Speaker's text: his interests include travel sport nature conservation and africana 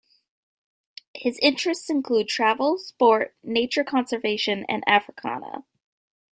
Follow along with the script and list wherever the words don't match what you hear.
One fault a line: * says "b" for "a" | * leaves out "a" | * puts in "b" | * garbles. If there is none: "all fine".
all fine